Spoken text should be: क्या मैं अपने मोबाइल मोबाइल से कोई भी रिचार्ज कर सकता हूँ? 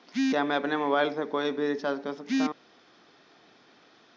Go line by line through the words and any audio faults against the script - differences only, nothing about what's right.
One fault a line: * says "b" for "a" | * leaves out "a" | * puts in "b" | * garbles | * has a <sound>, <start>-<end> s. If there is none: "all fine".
* leaves out "मोबाइल"